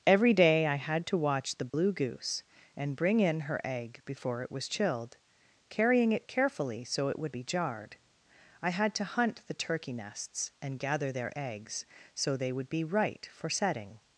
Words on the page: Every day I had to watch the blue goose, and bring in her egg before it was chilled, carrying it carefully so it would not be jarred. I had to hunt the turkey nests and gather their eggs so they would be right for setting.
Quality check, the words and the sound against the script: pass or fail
fail